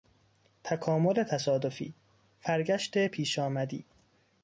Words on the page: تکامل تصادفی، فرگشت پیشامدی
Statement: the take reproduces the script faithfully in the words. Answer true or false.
true